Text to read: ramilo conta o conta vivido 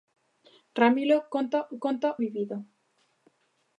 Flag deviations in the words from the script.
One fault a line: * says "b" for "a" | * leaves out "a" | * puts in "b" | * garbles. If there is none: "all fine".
all fine